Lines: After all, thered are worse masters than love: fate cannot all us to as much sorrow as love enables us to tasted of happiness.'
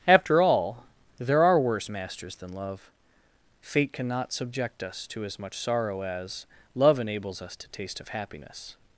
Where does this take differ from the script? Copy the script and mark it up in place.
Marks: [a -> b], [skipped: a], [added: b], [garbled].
After all, [thered -> there] are worse masters than love: fate cannot [all -> subject] us to as much sorrow as love enables us to [tasted -> taste] of happiness.'